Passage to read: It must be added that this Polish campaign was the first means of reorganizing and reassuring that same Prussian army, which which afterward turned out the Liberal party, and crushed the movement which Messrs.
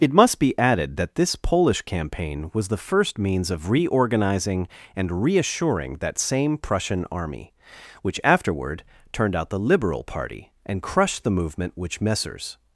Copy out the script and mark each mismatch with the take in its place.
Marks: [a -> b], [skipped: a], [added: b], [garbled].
It must be added that this Polish campaign was the first means of reorganizing and reassuring that same Prussian army, which [skipped: which] afterward turned out the Liberal party, and crushed the movement which Messrs.